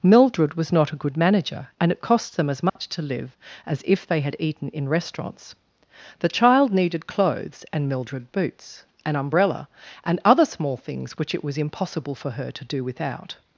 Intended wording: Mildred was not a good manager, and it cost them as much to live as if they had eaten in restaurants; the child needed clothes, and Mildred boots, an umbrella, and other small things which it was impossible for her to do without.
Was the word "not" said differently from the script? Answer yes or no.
no